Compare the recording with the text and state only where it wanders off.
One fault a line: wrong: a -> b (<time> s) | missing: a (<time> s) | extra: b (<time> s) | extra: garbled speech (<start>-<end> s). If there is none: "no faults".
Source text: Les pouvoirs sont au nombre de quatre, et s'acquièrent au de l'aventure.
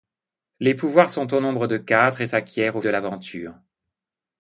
no faults